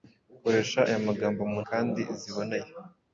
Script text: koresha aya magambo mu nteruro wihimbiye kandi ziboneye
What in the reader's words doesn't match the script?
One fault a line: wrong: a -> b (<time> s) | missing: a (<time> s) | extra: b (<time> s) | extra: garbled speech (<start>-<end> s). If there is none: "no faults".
missing: nteruro wihimbiye (1.6 s)